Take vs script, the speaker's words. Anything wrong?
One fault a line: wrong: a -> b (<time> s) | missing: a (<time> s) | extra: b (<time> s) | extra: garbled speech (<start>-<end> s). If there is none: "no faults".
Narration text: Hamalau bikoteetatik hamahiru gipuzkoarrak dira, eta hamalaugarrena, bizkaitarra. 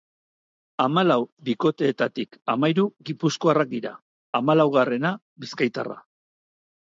missing: eta (3.9 s)